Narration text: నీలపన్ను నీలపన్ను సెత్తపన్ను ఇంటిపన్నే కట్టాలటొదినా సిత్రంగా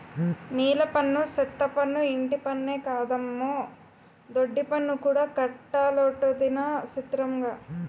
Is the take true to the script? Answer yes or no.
no